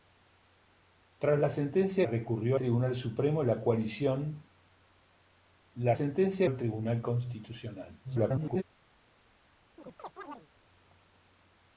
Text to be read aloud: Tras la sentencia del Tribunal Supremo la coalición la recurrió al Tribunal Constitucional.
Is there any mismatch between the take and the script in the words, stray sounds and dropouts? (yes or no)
yes